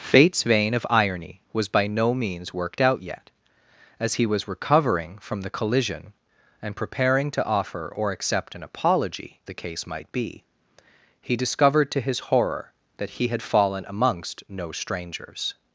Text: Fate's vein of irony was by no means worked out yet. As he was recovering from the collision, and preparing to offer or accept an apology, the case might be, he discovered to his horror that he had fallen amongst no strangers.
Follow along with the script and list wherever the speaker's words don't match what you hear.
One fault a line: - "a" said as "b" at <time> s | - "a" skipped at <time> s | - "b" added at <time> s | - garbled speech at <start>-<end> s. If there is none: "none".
none